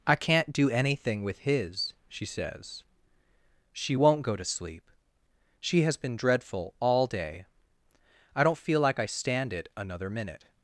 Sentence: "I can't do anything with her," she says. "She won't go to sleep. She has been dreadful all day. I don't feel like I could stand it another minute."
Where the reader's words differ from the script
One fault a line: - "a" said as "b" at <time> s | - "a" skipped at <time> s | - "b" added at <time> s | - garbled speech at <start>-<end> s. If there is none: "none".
- "her" said as "his" at 1.4 s
- "could" skipped at 9.0 s